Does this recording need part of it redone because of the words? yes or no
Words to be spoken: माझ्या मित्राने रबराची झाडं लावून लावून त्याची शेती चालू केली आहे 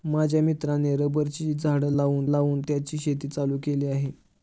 no